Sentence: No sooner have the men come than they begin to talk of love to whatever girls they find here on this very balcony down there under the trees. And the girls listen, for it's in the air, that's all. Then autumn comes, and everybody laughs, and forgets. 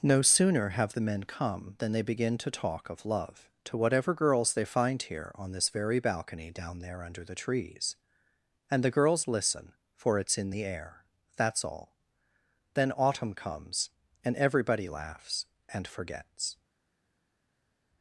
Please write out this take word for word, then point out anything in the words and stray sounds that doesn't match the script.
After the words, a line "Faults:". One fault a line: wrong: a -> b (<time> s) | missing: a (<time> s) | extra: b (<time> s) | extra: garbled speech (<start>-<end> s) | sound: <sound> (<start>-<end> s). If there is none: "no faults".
No sooner have the men come than they begin to talk of love to whatever girls they find here on this very balcony down there under the trees. And the girls listen, for it's in the air, that's all. Then autumn comes, and everybody laughs, and forgets.
Faults:
no faults